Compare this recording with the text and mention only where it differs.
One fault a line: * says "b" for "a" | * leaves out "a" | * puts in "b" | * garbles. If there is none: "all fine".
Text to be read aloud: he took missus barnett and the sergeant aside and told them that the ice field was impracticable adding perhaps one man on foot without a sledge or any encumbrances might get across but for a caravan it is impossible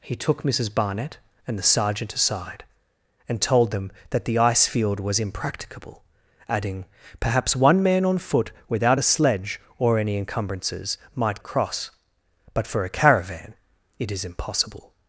* leaves out "get"